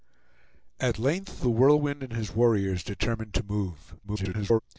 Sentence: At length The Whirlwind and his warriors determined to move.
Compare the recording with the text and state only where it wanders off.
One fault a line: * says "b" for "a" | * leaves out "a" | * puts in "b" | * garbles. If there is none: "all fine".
* garbles